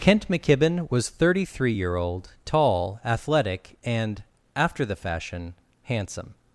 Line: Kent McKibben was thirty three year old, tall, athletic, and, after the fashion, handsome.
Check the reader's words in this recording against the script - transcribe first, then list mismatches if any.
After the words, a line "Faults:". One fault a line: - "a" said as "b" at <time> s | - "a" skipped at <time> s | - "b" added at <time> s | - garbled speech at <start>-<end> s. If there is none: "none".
Kent McKibben was thirty three year old, tall, athletic, and, after the fashion, handsome.
Faults:
none